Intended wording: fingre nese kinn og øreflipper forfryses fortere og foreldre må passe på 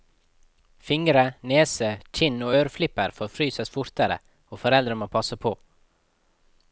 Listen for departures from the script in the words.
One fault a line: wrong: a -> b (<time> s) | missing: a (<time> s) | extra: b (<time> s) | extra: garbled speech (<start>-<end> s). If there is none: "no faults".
no faults